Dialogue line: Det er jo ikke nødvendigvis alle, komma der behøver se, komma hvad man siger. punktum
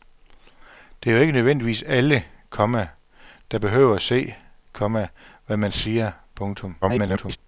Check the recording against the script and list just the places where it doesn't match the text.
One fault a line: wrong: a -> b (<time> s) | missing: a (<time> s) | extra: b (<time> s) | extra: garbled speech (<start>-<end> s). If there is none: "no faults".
extra: garbled speech (6.8-7.4 s)